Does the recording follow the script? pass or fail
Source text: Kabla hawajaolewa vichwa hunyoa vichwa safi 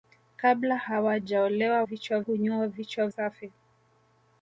pass